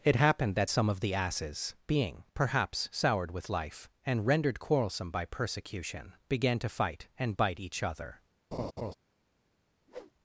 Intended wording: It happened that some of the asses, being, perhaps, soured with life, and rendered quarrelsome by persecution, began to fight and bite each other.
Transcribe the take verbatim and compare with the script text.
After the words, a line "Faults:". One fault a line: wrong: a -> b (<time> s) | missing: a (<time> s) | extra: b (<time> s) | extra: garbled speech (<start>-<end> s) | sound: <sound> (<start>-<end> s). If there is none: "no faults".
It happened that some of the asses, being, perhaps, soured with life, and rendered quarrelsome by persecution, began to fight and bite each other.
Faults:
sound: laugh (8.5-8.9 s)
sound: whoosh (9.9-10.1 s)